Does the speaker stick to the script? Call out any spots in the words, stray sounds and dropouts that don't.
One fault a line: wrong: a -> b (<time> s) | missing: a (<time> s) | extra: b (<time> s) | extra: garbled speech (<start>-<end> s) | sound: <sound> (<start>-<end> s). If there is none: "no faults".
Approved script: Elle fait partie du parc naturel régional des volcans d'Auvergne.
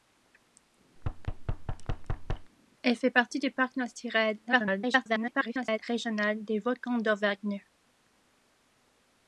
sound: thud (1.0-2.5 s)
extra: garbled speech (4.5-5.8 s)